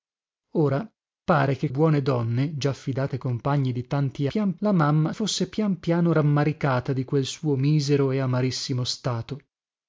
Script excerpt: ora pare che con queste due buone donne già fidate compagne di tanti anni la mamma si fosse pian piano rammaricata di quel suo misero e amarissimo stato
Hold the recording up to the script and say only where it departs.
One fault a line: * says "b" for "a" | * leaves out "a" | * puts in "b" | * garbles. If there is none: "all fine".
* leaves out "con queste due"
* says "pian" for "anni"
* leaves out "si"